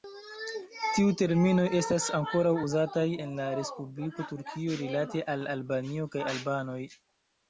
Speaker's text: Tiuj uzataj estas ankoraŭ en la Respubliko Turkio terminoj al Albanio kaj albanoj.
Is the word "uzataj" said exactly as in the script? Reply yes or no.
no